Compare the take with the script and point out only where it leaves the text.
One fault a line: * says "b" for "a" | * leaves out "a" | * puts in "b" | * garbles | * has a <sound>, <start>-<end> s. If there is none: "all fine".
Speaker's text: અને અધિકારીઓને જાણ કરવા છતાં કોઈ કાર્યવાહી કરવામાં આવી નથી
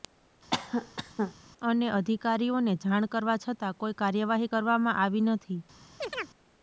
* has a cough, 0.5-1.3 s
* has a chirp, 6.0-6.3 s